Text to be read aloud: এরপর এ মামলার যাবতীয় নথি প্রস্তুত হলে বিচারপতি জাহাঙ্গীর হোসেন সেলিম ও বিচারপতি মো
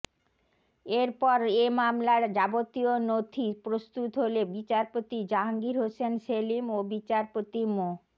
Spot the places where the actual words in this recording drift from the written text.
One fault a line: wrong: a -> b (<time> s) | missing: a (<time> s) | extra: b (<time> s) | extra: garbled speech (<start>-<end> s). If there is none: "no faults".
no faults